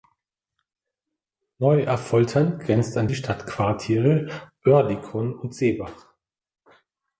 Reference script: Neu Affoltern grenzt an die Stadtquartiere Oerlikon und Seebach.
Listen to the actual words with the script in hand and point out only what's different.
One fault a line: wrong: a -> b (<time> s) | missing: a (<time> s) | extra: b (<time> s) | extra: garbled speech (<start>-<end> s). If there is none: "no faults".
no faults